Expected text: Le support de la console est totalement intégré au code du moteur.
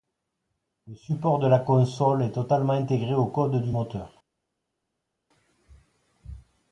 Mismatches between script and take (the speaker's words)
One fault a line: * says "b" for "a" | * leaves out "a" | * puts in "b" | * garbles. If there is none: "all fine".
all fine